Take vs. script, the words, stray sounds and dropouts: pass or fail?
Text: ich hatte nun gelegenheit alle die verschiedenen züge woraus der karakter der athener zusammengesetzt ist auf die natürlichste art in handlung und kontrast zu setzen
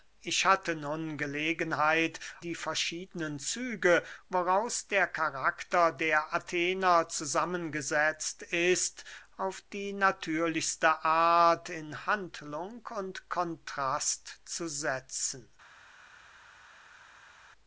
fail